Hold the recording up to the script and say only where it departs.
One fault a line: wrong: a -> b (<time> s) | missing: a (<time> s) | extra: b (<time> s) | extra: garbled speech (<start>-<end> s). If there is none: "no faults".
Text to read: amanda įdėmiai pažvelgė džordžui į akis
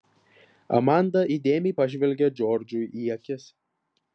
no faults